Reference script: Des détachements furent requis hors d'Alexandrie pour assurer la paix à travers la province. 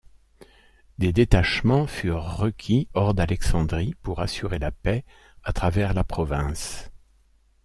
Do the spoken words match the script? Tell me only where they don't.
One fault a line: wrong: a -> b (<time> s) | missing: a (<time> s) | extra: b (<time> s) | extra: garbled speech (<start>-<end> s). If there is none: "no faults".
no faults